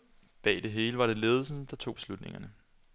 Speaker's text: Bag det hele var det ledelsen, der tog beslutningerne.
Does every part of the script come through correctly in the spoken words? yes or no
yes